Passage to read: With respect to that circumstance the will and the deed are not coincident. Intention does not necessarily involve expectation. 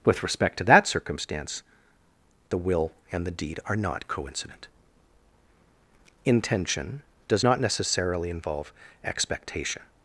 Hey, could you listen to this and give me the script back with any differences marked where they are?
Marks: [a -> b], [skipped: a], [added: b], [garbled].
With respect to that circumstance the will and the deed are not coincident. Intention does not necessarily involve expectation.